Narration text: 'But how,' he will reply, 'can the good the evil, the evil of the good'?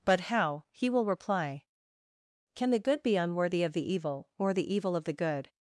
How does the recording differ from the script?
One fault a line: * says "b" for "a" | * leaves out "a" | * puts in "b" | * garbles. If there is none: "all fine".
* puts in "be unworthy of"
* puts in "or"